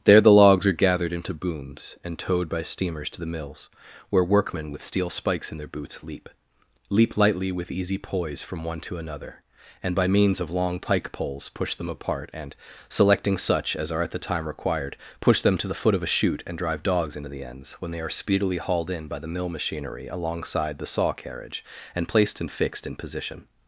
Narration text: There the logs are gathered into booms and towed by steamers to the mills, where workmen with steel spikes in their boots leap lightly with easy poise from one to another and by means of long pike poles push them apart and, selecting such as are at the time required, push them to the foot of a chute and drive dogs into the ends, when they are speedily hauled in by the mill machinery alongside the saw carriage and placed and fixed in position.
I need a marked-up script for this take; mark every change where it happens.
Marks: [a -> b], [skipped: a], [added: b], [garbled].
There the logs are gathered into booms and towed by steamers to the mills, where workmen with steel spikes in their boots leap [added: leap] lightly with easy poise from one to another and by means of long pike poles push them apart and, selecting such as are at the time required, push them to the foot of a chute and drive dogs into the ends, when they are speedily hauled in by the mill machinery alongside the saw carriage and placed and fixed in position.